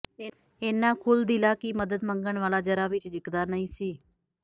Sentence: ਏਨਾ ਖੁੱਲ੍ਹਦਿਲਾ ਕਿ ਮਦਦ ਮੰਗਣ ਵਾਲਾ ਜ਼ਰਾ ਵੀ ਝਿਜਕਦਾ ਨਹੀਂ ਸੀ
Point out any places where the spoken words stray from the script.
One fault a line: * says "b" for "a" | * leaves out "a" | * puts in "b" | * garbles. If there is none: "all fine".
all fine